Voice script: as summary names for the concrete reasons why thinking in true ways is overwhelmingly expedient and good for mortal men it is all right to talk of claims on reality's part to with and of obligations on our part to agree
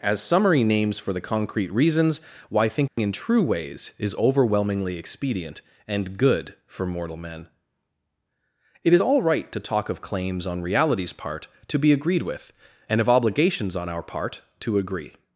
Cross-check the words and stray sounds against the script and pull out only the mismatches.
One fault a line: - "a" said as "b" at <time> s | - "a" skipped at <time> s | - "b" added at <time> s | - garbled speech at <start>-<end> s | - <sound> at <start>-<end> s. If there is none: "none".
- dropout at 2.9-3.0 s
- "be agreed" added at 11.8 s